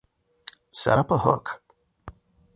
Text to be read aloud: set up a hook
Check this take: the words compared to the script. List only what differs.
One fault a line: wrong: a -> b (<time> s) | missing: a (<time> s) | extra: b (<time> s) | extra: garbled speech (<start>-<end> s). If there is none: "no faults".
no faults